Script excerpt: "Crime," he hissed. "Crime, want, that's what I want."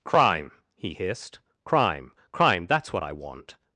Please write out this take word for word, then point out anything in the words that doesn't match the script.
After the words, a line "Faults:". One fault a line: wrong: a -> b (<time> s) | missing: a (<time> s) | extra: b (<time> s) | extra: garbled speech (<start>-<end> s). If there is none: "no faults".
"Crime," he hissed. "Crime, crime, that's what I want."
Faults:
wrong: want -> crime (2.3 s)